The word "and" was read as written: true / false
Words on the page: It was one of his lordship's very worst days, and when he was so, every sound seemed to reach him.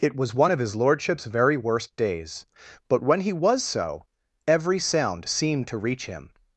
false